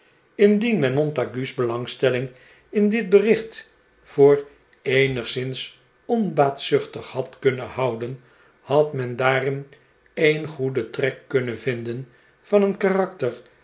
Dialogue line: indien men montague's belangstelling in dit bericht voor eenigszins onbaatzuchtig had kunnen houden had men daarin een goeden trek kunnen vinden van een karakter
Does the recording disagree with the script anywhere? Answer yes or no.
no